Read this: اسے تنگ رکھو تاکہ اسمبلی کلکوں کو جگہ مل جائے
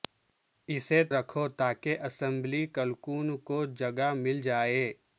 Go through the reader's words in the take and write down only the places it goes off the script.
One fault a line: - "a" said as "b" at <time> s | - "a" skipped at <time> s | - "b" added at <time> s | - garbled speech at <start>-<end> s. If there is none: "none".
- "تنگ" skipped at 1.0 s